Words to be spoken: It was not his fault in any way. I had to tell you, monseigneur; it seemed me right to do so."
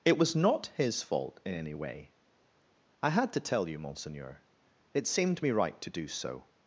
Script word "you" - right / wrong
right